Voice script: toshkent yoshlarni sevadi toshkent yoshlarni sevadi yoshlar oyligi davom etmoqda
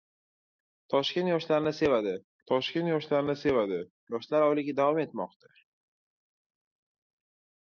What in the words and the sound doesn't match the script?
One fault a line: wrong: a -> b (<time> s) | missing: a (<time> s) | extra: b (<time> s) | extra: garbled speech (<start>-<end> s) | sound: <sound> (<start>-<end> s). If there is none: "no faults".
no faults